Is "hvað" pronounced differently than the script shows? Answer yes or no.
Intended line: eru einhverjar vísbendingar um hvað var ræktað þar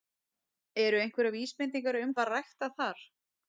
yes